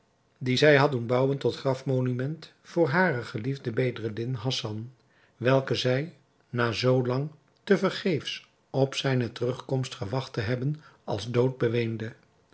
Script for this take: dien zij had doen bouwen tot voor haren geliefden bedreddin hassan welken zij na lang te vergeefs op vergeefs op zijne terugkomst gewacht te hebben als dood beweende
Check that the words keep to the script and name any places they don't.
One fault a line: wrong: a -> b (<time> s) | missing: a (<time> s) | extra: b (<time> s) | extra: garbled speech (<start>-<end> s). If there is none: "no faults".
extra: grafmonument (1.6 s)
extra: zoo (6.7 s)
missing: vergeefs op (8.9 s)